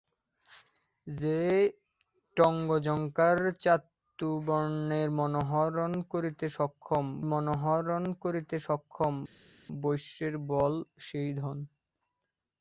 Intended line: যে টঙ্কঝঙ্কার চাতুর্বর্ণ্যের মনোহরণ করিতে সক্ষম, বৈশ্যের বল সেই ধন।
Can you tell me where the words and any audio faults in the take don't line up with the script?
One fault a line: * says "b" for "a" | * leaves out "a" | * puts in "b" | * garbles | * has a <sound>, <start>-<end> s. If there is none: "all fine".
* puts in "মনোহরণ করিতে সক্ষম"